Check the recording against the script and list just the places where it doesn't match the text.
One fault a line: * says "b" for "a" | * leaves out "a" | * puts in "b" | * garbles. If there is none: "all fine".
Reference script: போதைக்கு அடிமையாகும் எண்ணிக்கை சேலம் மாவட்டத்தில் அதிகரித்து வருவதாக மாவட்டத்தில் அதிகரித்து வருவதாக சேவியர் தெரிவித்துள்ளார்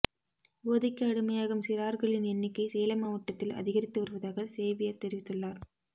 * puts in "சிறார்களின்"
* leaves out "மாவட்டத்தில் அதிகரித்து வருவதாக"